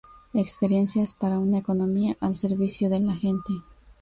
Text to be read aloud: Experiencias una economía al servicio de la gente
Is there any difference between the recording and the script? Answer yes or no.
yes